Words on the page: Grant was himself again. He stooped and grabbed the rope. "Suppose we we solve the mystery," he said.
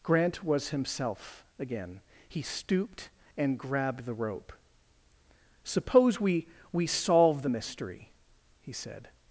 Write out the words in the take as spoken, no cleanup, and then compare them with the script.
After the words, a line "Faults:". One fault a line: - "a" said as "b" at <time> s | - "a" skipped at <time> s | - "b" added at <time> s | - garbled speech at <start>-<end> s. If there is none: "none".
Grant was himself again. He stooped and grabbed the rope. "Suppose we we solve the mystery," he said.
Faults:
none